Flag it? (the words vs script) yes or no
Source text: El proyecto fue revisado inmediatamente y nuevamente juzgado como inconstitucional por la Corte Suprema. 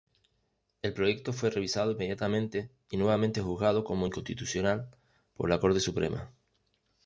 no